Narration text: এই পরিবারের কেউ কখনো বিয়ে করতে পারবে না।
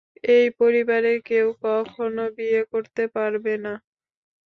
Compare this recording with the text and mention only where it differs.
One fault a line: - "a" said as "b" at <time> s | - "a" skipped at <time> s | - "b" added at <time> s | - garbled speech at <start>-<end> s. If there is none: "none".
none